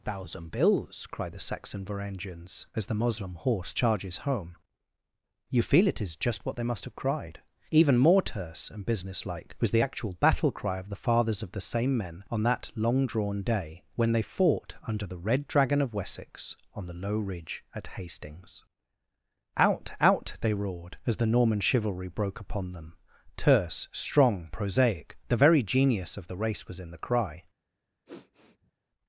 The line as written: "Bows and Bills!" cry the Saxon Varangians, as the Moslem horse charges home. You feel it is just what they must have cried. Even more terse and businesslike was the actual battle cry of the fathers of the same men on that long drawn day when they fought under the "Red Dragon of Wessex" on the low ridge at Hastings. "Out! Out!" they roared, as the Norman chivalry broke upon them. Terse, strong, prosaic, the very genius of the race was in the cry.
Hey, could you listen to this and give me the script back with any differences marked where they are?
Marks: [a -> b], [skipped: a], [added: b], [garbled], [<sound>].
["Bows and -> Thousand] Bills!" cry the Saxon Varangians, as the Moslem horse charges home. You feel it is just what they must have cried. Even more terse and businesslike was the actual battle cry of the fathers of the same men on that long drawn day when they fought under the "Red Dragon of Wessex" on the low ridge at Hastings. "Out! Out!" they roared, as the Norman chivalry broke upon them. Terse, strong, prosaic, the very genius of the race was in the cry. [sniff]